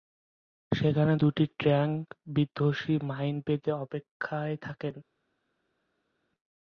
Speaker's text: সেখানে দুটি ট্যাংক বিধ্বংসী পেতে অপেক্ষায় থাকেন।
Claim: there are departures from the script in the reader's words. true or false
true